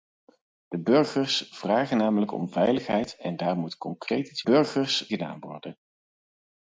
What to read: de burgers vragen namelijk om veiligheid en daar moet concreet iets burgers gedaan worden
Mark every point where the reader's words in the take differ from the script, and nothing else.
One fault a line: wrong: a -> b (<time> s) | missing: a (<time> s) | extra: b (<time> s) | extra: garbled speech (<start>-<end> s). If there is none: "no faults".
no faults